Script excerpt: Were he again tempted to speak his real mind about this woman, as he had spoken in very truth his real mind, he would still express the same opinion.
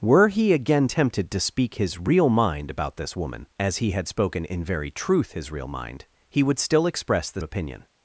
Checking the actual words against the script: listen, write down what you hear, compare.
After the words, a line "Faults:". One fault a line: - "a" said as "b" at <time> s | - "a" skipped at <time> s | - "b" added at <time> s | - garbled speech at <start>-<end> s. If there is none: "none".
Were he again tempted to speak his real mind about this woman, as he had spoken in very truth his real mind, he would still express the opinion.
Faults:
- "same" skipped at 7.4 s